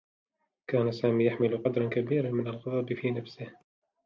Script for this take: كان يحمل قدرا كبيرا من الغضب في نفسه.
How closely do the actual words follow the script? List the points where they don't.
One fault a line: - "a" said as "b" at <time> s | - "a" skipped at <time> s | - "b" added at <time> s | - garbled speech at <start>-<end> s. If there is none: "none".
- "سامي" added at 0.9 s